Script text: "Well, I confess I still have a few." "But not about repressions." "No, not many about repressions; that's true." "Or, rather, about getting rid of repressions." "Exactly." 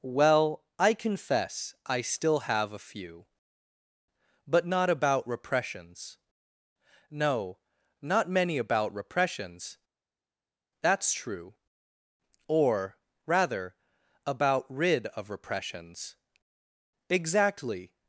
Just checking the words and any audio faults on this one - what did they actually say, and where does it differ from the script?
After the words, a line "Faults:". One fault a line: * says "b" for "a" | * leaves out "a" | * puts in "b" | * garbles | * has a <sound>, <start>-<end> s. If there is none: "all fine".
"Well, I confess I still have a few." "But not about repressions." "No, not many about repressions; that's true." "Or, rather, about rid of repressions." "Exactly."
Faults:
* leaves out "getting"